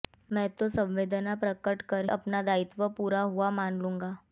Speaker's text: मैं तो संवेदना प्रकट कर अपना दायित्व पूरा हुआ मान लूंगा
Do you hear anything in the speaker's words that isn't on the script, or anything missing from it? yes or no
no